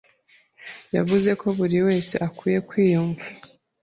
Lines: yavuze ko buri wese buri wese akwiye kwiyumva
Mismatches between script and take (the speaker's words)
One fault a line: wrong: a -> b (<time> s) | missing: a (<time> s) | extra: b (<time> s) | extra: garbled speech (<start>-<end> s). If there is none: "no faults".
missing: buri wese (2.2 s)